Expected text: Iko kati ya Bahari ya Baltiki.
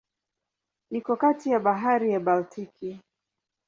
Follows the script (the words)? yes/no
yes